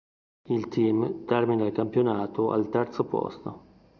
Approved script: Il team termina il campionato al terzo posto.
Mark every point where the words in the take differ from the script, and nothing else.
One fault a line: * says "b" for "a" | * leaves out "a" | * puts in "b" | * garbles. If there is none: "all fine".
all fine